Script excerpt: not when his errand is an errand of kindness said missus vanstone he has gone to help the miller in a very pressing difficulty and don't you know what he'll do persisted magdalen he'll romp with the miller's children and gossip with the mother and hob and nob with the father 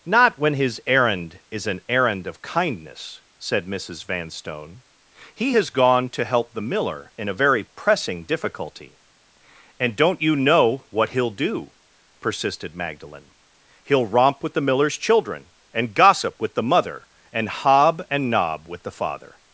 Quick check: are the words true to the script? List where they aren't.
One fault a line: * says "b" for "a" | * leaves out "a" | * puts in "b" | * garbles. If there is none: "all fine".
all fine